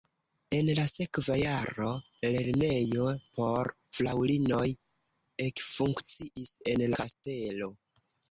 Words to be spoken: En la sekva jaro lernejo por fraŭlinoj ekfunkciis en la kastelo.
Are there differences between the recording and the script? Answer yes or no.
yes